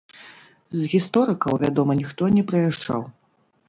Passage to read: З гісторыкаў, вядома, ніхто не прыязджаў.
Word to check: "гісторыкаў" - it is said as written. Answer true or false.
true